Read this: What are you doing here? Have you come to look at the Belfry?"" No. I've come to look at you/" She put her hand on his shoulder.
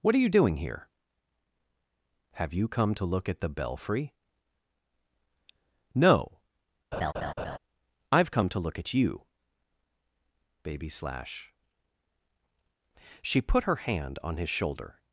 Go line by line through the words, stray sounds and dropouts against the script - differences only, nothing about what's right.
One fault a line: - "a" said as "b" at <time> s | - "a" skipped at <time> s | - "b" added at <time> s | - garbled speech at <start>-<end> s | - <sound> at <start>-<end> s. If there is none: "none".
- laugh at 6.9-7.6 s
- "baby slash" added at 10.6 s